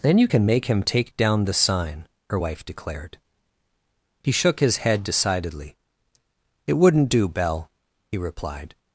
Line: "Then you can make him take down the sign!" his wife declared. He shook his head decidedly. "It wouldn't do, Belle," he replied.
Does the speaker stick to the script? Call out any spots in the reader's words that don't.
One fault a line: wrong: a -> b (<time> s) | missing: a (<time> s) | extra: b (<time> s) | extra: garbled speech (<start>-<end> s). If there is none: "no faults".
wrong: his -> her (2.3 s)